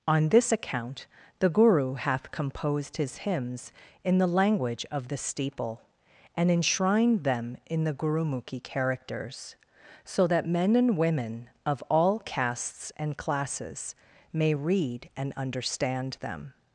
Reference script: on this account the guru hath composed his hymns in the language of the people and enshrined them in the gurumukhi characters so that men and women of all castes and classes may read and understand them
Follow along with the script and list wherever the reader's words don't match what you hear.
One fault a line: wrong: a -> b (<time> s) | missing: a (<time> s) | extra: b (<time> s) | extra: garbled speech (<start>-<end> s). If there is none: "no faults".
wrong: people -> steeple (5.2 s)